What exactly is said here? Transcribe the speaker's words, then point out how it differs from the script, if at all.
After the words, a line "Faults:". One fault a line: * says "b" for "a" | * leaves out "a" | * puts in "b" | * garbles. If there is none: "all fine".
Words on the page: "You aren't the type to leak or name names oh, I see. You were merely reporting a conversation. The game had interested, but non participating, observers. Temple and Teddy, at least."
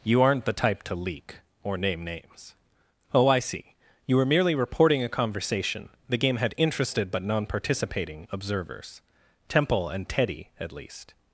"You aren't the type to leak or name names oh, I see. You were merely reporting a conversation. The game had interested, but non participating, observers. Temple and Teddy, at least."
Faults:
all fine